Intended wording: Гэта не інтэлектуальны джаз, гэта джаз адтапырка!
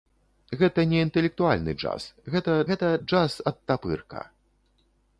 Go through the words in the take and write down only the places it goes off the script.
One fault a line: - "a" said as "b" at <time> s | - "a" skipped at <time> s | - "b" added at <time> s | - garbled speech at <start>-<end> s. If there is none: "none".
- "гэта" added at 2.7 s